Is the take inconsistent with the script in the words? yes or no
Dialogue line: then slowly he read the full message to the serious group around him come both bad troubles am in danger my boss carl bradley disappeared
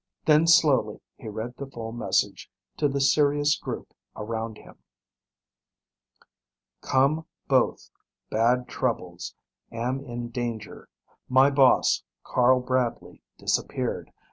no